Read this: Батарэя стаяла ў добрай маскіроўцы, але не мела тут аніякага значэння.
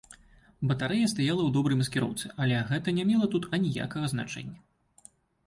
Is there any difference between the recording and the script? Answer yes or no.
yes